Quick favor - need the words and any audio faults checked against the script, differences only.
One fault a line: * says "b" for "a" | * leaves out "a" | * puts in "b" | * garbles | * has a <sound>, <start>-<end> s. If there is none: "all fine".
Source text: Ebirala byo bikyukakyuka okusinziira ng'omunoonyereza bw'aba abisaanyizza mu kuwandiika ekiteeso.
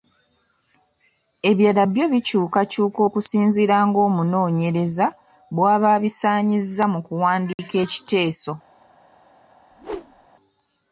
* has a dropout, 7.5-7.6 s
* has a whoosh, 9.7-10.3 s